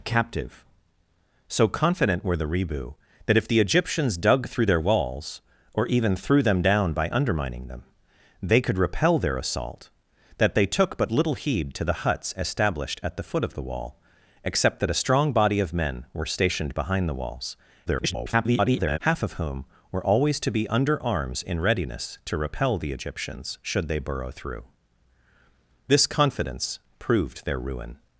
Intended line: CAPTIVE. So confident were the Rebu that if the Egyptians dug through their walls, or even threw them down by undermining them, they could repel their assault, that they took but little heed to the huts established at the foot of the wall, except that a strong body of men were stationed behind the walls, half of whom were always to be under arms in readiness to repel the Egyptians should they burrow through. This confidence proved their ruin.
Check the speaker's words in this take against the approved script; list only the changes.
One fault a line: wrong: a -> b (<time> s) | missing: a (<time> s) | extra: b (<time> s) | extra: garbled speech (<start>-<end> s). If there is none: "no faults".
extra: garbled speech (17.9-19.0 s)